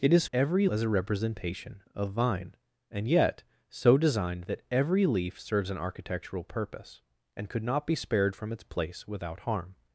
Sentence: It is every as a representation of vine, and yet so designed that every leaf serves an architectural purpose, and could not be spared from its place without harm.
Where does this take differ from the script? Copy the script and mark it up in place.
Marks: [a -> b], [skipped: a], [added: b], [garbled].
It is every as a representation of vine, and yet so designed that every leaf serves an architectural purpose, and could not be spared from its place without harm.